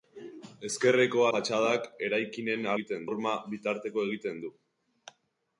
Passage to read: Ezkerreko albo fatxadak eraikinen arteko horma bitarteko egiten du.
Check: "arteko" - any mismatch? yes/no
yes